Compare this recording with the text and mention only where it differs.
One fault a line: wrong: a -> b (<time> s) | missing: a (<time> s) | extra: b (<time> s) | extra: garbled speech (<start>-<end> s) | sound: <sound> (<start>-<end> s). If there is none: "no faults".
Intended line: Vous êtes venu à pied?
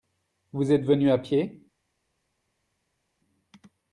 no faults